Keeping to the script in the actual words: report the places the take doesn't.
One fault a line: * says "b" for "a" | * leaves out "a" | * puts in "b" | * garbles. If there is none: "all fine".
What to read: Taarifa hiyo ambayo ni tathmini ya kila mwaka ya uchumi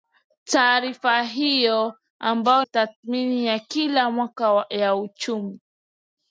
* leaves out "ni"